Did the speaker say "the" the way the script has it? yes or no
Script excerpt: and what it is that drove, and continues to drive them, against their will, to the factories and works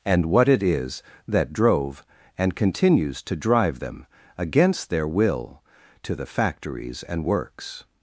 yes